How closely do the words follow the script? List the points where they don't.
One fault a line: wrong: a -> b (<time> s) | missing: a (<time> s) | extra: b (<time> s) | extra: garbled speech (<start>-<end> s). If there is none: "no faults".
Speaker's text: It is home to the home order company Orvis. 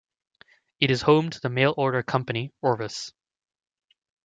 wrong: home -> mail (1.5 s)